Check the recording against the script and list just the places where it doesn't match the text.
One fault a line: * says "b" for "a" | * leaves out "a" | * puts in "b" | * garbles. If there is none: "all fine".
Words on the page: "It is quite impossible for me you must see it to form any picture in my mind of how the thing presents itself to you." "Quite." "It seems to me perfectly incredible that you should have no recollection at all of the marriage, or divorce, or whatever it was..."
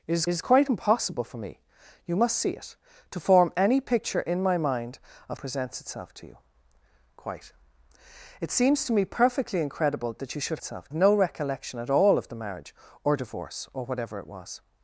* puts in "is"
* leaves out "how the thing"
* says "itself" for "have"